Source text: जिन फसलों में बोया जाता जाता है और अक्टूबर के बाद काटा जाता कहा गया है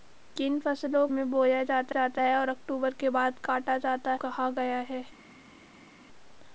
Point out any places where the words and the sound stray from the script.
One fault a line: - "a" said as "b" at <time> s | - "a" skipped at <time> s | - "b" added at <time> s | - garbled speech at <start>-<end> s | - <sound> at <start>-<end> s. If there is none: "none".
none